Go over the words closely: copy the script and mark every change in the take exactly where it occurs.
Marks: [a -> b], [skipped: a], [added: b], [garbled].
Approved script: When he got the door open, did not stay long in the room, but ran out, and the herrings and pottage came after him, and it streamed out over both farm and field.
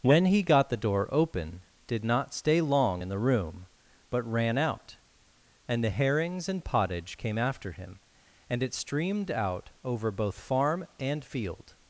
When he got the door open, did not stay long in the room, but ran out, and the herrings and pottage came after him, and it streamed out over both farm and field.